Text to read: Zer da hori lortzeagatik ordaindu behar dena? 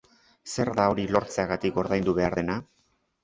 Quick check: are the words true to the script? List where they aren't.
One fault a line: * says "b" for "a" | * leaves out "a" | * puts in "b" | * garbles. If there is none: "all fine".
all fine